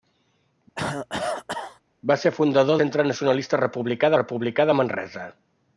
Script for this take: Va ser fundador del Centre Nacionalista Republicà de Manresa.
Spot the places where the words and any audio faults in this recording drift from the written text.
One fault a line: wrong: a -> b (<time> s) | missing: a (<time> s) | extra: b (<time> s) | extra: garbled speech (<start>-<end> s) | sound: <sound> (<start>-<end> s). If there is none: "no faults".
sound: cough (0.8-1.8 s)
missing: del (2.8 s)
extra: Republicà (4.2 s)